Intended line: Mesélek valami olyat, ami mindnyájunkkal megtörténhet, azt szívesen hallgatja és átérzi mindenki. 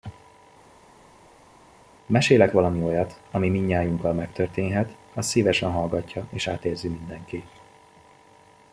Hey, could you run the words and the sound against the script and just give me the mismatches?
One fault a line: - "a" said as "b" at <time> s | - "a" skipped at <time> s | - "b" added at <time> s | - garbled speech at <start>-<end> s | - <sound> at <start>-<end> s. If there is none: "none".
none